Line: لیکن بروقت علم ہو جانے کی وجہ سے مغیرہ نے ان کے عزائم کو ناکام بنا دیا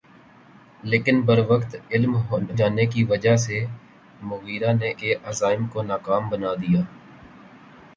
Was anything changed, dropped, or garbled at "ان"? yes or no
yes